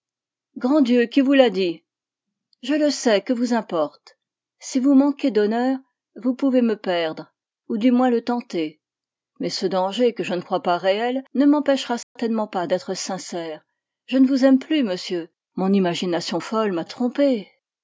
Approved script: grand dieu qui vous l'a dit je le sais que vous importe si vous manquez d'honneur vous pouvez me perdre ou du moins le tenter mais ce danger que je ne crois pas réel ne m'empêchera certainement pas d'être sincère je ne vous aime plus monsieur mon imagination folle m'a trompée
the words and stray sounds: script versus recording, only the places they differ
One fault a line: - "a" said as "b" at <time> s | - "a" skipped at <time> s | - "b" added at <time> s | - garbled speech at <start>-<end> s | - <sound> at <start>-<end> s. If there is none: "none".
- dropout at 12.0-12.2 s